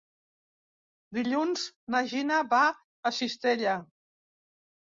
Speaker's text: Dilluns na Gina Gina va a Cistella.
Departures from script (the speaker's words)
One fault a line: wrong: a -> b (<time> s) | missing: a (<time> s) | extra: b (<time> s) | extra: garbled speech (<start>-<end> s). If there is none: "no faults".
missing: Gina (2.4 s)